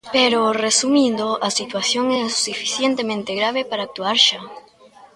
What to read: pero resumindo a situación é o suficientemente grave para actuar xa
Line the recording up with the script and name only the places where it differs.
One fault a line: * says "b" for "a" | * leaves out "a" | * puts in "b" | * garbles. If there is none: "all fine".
all fine